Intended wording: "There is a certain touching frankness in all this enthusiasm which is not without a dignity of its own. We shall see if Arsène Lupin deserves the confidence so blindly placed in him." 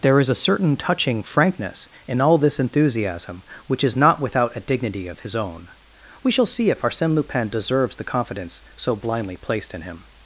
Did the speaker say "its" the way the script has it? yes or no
no